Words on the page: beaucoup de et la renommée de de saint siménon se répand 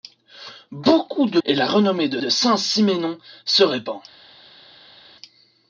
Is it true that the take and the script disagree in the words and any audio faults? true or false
false